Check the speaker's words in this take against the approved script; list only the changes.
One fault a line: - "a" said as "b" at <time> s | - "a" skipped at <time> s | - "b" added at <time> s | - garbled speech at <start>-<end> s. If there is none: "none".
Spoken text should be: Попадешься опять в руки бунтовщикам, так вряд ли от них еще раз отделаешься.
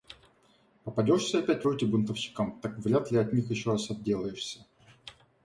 none